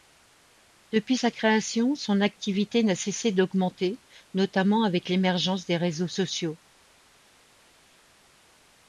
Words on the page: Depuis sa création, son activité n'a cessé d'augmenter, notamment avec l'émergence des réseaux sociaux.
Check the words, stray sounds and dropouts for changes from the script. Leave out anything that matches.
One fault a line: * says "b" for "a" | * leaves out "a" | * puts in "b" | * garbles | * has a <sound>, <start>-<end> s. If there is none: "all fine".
all fine